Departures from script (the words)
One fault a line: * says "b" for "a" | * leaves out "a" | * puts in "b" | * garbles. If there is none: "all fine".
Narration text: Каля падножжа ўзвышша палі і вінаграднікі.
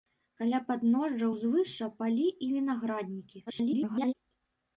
* garbles